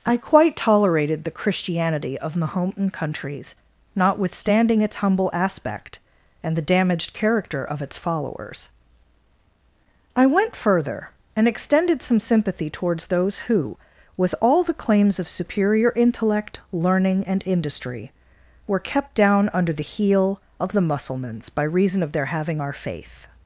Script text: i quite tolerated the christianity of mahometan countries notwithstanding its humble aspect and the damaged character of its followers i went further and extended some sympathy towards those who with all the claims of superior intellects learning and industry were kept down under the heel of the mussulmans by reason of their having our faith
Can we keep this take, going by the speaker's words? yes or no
no